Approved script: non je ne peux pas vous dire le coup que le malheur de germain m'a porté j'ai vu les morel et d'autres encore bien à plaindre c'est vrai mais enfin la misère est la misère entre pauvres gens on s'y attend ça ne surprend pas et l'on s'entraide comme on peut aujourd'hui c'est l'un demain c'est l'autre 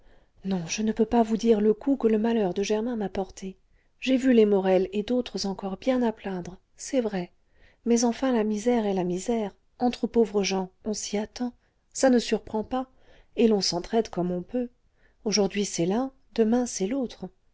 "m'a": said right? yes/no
yes